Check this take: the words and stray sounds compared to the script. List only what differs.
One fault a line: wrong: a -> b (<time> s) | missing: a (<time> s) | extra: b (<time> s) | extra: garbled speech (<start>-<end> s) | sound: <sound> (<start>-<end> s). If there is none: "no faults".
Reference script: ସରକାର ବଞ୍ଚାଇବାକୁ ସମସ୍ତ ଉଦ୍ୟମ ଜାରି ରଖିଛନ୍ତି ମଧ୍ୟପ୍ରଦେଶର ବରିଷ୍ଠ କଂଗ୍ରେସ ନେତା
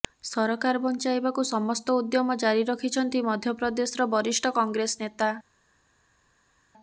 no faults